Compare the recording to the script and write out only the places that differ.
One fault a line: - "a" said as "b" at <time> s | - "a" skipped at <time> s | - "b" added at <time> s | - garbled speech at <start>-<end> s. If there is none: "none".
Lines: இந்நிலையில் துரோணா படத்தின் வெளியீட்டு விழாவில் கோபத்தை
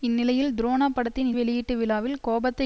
none